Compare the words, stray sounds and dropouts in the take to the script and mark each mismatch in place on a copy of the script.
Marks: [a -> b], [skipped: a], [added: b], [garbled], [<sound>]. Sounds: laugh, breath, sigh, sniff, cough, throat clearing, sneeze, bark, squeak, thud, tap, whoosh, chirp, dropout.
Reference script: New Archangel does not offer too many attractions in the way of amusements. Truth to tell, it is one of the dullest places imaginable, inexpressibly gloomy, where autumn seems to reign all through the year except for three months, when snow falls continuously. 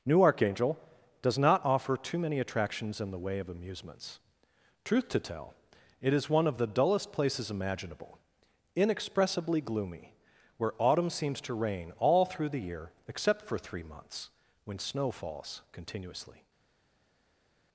New Archangel does not offer too many attractions in the way of amusements. Truth to tell, it is one of the dullest places imaginable, inexpressibly gloomy, where autumn seems to reign all through the year except for three months, when snow falls continuously.